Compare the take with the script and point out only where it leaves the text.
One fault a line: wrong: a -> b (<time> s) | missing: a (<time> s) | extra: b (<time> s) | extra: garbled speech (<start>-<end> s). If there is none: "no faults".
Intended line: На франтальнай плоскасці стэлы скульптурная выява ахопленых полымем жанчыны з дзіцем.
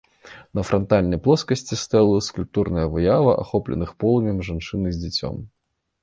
no faults